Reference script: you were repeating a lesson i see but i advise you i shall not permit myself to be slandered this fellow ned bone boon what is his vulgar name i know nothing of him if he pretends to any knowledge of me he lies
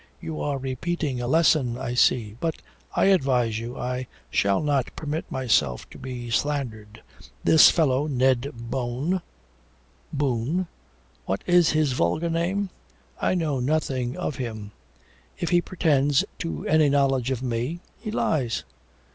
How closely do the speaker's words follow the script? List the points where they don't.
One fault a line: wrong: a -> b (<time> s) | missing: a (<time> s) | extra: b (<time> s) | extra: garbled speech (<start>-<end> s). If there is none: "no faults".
wrong: were -> are (0.4 s)